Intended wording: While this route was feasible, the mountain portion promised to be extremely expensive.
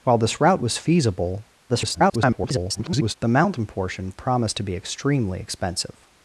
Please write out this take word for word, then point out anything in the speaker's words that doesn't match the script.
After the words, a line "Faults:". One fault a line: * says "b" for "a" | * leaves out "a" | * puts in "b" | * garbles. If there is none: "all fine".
While this route was feasible, [garbled] the mountain portion promised to be extremely expensive.
Faults:
* garbles